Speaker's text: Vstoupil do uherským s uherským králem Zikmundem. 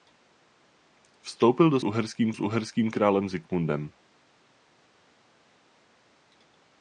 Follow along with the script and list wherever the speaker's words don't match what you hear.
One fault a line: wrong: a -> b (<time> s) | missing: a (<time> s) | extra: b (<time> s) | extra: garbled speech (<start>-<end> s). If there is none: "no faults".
no faults